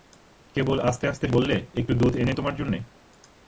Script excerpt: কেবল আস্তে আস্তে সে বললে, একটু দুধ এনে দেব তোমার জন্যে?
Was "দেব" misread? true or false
true